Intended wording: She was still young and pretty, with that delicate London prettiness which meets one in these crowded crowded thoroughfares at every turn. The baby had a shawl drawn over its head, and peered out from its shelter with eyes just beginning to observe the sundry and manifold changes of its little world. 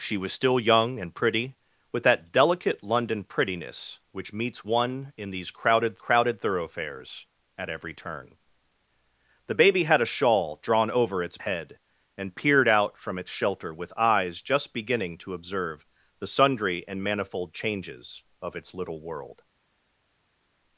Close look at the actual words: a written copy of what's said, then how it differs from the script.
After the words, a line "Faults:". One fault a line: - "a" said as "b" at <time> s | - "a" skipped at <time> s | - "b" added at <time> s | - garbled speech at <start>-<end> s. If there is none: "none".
She was still young and pretty, with that delicate London prettiness which meets one in these crowded crowded thoroughfares at every turn. The baby had a shawl drawn over its head, and peered out from its shelter with eyes just beginning to observe the sundry and manifold changes of its little world.
Faults:
none